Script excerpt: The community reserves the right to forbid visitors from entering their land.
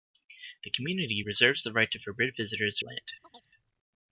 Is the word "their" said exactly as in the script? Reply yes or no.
no